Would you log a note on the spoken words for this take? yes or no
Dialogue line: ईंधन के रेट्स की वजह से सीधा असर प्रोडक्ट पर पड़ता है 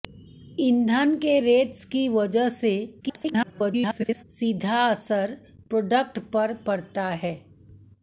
yes